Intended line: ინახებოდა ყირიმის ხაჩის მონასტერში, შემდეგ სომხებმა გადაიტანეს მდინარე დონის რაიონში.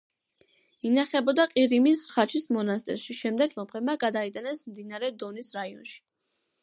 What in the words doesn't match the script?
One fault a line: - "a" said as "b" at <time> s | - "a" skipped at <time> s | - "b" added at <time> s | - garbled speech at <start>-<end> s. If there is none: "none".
none